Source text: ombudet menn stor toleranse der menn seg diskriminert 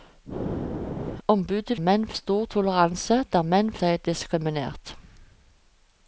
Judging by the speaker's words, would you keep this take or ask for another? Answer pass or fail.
pass